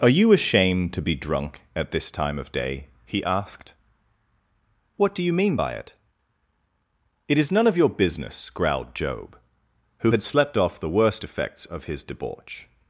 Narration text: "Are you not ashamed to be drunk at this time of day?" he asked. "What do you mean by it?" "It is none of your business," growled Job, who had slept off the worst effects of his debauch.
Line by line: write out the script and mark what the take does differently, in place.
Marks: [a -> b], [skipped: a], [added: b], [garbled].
"Are you [skipped: not] ashamed to be drunk at this time of day?" he asked. "What do you mean by it?" "It is none of your business," growled Job, who had slept off the worst effects of his debauch.